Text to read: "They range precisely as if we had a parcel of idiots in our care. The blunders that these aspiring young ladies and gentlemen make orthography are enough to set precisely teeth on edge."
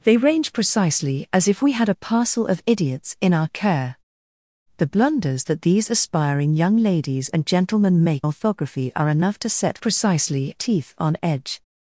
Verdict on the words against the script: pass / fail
pass